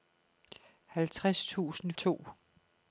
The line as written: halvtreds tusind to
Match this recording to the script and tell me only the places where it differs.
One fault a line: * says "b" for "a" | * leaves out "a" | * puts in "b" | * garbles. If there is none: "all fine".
all fine